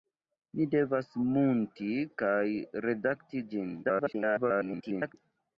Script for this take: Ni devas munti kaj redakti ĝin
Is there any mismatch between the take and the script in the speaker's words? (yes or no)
yes